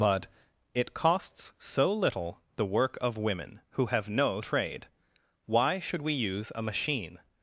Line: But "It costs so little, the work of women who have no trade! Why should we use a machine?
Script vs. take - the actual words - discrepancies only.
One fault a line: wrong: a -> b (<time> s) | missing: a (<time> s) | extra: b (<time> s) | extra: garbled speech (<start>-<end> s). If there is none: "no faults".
no faults